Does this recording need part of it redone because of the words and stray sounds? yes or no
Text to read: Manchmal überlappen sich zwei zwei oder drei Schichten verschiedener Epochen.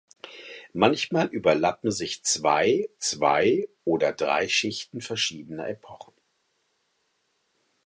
no